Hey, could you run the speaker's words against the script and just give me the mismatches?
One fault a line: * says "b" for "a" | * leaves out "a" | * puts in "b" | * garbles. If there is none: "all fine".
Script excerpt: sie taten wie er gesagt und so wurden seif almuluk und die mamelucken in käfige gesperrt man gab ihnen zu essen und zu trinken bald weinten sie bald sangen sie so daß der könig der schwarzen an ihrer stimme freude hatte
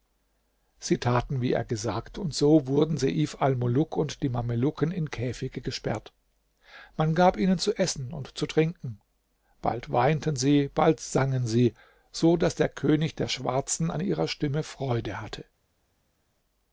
all fine